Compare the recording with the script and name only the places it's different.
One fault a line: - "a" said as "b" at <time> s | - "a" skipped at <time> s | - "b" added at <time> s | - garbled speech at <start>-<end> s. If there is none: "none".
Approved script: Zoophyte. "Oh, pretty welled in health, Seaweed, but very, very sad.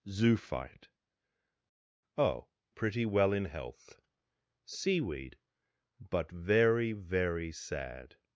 - "welled" said as "well" at 3.0 s